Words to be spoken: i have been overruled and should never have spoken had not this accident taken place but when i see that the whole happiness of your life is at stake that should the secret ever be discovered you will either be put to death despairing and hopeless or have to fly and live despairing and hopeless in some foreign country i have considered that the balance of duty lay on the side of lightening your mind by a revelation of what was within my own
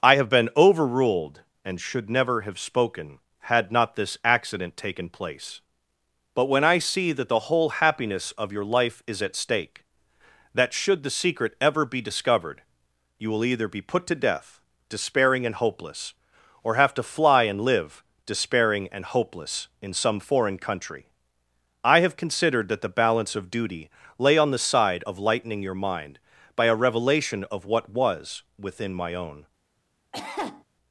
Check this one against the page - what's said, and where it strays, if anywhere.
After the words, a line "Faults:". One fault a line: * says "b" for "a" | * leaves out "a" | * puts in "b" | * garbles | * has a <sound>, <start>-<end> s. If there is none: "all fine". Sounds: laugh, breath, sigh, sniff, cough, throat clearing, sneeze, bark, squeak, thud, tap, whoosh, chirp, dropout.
i have been overruled and should never have spoken had not this accident taken place but when i see that the whole happiness of your life is at stake that should the secret ever be discovered you will either be put to death despairing and hopeless or have to fly and live despairing and hopeless in some foreign country i have considered that the balance of duty lay on the side of lightening your mind by a revelation of what was within my own
Faults:
* has a cough, 30.1-30.6 s